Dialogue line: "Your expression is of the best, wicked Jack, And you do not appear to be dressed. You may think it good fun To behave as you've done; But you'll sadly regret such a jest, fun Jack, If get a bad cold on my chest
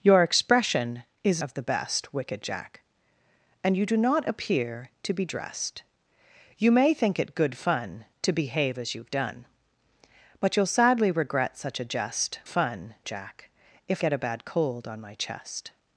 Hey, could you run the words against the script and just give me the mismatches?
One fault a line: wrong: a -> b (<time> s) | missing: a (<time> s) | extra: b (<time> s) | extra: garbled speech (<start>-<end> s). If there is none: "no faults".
no faults